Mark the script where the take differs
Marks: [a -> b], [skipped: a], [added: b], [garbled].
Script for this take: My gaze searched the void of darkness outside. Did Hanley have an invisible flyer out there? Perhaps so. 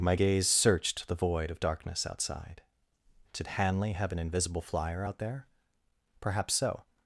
My gaze searched the void of darkness outside. Did Hanley have an invisible flyer out there? Perhaps so.